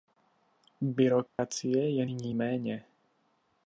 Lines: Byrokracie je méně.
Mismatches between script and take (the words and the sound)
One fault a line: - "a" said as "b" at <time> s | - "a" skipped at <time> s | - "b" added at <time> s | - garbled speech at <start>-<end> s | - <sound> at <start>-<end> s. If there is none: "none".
- dropout at 1.3-1.4 s
- "nyní" added at 2.0 s